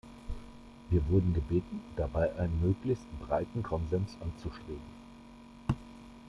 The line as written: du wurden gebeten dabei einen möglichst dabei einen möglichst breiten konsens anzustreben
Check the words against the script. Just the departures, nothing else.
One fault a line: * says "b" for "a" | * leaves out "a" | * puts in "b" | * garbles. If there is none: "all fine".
* says "wir" for "du"
* leaves out "dabei einen möglichst"